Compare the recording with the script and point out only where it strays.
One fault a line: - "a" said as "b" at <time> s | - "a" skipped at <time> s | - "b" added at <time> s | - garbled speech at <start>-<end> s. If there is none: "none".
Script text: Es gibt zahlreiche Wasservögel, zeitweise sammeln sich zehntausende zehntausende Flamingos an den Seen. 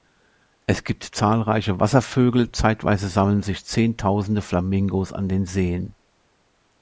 - "zehntausende" skipped at 4.4 s